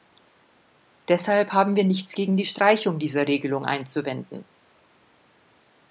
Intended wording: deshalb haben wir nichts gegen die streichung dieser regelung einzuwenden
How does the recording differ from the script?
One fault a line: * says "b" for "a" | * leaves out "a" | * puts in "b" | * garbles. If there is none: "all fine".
all fine